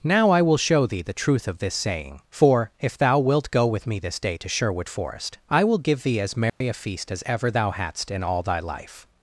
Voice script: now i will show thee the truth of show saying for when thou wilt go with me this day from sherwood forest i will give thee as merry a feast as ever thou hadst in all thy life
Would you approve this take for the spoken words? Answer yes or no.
no